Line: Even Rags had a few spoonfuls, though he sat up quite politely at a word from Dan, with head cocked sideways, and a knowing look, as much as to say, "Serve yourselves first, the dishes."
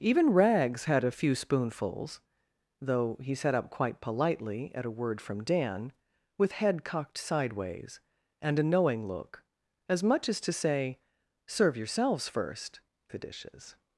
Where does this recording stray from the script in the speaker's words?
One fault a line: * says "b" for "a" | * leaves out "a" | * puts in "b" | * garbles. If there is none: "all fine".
all fine